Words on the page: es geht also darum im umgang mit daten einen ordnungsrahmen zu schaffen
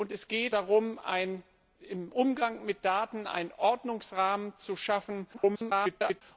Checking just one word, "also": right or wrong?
wrong